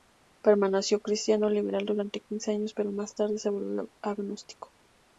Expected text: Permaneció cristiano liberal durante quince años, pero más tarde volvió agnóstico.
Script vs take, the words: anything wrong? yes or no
yes